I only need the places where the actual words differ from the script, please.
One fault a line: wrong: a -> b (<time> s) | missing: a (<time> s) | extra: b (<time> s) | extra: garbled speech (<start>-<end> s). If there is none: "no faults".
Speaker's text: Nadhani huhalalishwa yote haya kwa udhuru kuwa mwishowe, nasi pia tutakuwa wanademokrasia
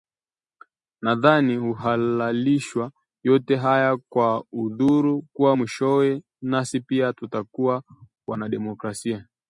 no faults